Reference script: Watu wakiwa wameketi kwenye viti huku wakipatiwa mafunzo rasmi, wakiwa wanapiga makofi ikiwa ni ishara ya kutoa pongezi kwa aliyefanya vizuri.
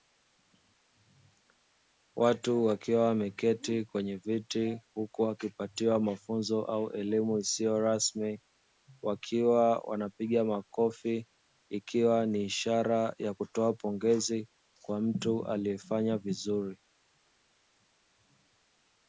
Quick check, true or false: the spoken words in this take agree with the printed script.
false